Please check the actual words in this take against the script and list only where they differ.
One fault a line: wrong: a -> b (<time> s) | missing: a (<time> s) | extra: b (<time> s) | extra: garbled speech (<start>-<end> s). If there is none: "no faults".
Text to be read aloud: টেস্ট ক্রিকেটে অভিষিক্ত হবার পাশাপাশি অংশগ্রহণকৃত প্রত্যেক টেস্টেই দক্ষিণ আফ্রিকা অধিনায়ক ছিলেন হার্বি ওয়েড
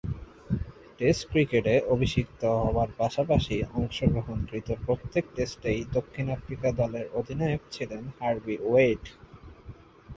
extra: দলের (6.8 s)